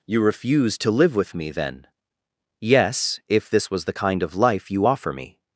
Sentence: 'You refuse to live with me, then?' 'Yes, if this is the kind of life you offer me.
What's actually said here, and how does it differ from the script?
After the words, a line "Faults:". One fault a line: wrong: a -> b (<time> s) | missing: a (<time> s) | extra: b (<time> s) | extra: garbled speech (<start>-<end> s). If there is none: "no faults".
'You refuse to live with me, then?' 'Yes, if this was the kind of life you offer me.
Faults:
wrong: is -> was (3.7 s)